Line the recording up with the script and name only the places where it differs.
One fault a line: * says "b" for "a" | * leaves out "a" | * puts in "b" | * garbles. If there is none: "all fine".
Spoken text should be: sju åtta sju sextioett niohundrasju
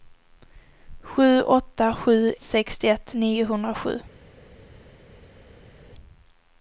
all fine